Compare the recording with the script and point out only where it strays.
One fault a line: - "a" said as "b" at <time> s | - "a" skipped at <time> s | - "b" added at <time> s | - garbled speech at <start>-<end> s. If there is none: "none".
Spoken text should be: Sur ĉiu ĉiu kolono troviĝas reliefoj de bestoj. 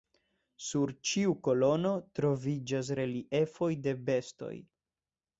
- "ĉiu" skipped at 1.3 s